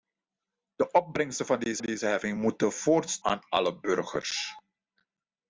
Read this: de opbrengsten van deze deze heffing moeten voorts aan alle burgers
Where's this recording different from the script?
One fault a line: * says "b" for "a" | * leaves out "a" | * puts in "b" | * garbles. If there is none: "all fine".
all fine